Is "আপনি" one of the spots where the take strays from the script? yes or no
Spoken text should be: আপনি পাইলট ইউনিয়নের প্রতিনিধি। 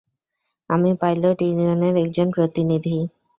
yes